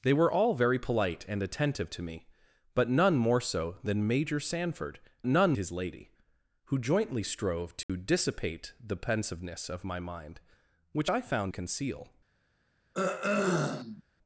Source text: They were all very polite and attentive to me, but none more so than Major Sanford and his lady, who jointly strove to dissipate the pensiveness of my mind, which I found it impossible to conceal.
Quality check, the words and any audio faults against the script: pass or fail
fail